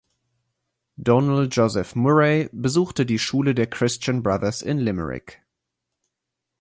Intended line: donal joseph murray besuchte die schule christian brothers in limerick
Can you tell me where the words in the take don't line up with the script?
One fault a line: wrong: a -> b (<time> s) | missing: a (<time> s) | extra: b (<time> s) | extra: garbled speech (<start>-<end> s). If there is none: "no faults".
extra: der (3.5 s)